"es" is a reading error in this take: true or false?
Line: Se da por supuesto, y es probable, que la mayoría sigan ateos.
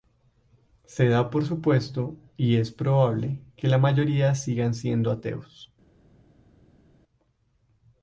false